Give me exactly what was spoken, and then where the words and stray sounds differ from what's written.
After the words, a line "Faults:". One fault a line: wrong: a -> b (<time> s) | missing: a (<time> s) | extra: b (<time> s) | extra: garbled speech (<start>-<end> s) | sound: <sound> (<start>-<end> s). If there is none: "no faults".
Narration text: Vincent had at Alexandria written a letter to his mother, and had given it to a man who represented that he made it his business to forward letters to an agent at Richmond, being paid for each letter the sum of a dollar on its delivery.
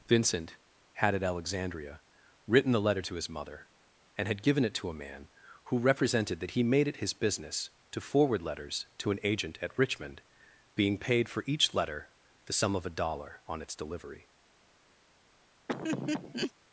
Vincent had at Alexandria written the letter to his mother, and had given it to a man who represented that he made it his business to forward letters to an agent at Richmond, being paid for each letter the sum of a dollar on its delivery.
Faults:
wrong: a -> the (2.7 s)
sound: laugh (15.7-16.5 s)